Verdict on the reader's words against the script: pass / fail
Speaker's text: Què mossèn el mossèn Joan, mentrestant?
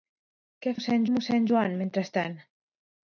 pass